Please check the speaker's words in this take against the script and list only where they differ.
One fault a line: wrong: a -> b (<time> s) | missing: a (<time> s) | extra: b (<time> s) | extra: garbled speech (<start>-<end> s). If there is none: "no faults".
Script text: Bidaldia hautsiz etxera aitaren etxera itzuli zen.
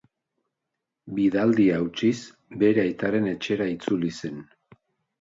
wrong: etxera -> bere (2.6 s)